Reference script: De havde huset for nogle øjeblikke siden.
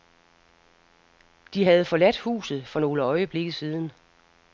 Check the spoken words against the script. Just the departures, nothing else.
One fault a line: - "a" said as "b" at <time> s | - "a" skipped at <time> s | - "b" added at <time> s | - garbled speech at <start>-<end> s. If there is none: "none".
- "forladt" added at 1.8 s